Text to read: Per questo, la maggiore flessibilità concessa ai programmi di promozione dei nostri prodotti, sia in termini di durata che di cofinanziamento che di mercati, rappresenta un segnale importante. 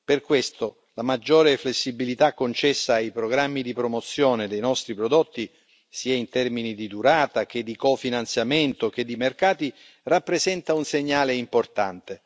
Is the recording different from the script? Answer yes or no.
no